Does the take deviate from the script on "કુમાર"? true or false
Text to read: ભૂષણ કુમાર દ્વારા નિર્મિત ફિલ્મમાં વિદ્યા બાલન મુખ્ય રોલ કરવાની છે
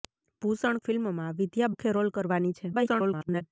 true